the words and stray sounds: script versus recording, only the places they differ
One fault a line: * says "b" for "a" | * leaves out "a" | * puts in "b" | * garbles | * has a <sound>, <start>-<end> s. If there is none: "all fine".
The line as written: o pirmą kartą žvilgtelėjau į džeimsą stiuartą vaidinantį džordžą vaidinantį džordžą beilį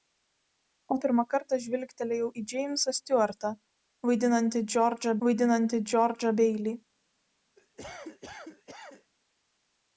* has a cough, 7.6-9.1 s